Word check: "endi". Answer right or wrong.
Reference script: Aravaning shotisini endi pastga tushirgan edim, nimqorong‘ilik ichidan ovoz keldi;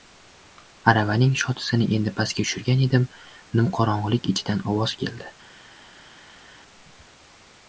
right